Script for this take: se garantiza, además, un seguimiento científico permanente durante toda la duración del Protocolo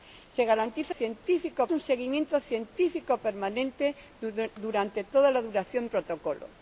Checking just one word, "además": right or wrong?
wrong